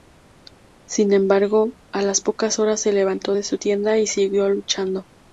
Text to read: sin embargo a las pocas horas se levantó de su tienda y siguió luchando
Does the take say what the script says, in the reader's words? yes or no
yes